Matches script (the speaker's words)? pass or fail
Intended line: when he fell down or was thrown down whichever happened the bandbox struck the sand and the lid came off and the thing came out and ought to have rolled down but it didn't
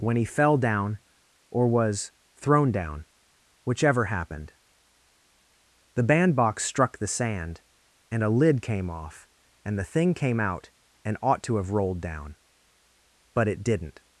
fail